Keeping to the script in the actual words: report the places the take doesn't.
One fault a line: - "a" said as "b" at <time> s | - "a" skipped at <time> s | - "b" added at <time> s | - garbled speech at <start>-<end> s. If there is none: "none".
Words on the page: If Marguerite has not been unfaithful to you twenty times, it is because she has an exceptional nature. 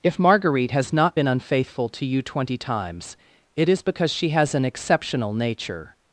none